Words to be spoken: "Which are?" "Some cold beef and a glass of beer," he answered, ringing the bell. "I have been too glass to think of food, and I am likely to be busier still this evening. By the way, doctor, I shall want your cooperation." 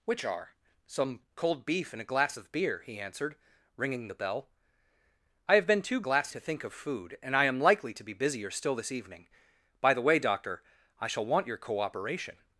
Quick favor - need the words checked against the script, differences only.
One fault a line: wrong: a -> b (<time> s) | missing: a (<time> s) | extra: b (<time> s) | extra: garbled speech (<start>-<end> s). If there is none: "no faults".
no faults